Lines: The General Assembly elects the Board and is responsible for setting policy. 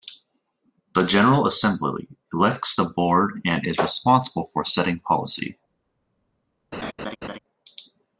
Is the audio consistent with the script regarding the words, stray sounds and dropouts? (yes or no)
no